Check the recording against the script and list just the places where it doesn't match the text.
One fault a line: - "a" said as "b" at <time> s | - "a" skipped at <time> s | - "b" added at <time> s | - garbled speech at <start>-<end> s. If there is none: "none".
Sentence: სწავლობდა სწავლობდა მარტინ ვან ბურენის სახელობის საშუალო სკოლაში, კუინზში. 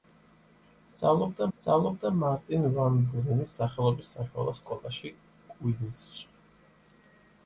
none